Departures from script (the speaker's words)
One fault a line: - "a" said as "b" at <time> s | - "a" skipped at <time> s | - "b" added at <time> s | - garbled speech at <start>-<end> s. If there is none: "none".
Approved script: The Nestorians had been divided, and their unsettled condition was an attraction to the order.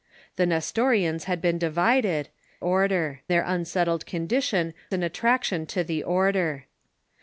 - "and" said as "order" at 2.6 s
- "was" skipped at 4.7 s